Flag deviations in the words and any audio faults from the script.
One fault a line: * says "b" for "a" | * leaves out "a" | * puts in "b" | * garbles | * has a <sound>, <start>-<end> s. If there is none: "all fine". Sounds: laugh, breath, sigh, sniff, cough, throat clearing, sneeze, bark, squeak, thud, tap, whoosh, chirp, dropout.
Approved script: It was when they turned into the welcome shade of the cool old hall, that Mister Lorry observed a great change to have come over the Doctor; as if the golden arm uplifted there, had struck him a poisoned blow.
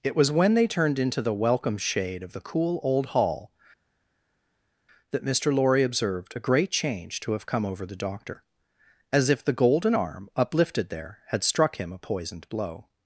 all fine